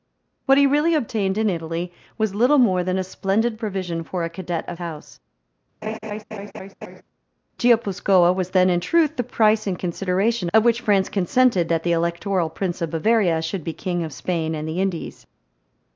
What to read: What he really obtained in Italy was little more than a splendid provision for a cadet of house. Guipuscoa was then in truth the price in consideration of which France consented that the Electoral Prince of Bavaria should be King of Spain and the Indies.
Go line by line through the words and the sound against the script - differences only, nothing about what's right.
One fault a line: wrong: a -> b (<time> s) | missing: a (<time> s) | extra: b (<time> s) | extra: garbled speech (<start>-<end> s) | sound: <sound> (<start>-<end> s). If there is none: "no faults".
sound: laugh (5.8-7.0 s)